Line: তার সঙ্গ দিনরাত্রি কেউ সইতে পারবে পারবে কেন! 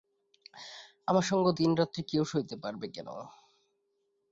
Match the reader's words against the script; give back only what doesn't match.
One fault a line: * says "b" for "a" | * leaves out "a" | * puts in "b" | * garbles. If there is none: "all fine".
* says "আমার" for "তার"
* leaves out "পারবে"